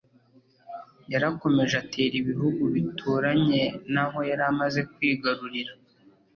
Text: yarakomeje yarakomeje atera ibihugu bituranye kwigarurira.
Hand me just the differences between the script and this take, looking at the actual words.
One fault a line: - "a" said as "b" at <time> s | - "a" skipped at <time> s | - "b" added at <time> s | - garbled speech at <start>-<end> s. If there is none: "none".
- "yarakomeje" skipped at 1.8 s
- "naho yari amaze" added at 3.9 s